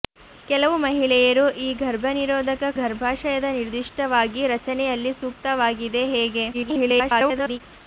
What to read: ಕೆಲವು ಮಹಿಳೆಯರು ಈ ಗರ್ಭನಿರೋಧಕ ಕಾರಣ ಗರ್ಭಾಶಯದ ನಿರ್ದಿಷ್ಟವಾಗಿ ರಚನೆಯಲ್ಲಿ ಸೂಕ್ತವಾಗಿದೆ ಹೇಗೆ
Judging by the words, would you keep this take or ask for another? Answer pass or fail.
fail